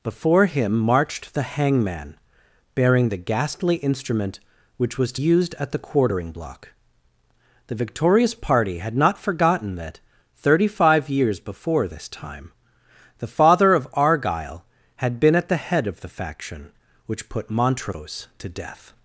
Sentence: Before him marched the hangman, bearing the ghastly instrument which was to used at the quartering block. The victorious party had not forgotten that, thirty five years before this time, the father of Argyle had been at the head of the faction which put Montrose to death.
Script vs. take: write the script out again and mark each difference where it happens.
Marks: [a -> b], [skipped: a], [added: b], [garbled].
Before him marched the hangman, bearing the ghastly instrument which was to used at the quartering block. The victorious party had not forgotten that, thirty five years before this time, the father of Argyle had been at the head of the faction which put Montrose to death.